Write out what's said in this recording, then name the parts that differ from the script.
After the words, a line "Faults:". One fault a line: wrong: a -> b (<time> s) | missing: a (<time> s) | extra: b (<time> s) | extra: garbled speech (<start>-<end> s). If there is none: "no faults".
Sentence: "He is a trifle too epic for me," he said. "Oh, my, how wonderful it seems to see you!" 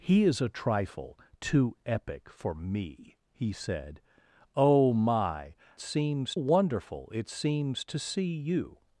"He is a trifle too epic for me," he said. "Oh, my, seems wonderful it seems to see you!"
Faults:
wrong: how -> seems (5.8 s)